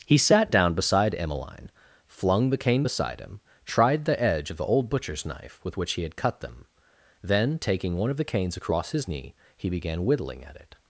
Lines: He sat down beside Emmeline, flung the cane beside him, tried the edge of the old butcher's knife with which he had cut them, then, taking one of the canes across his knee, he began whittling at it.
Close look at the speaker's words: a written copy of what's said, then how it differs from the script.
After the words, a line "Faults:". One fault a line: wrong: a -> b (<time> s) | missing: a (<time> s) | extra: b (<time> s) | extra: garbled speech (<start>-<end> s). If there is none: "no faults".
He sat down beside Emmeline, flung the cane beside him, tried the edge of the old butcher's knife with which he had cut them, then, taking one of the canes across his knee, he began whittling at it.
Faults:
no faults